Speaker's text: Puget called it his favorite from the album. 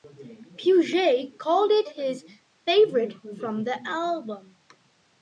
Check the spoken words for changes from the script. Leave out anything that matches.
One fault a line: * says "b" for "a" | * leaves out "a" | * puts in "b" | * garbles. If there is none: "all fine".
all fine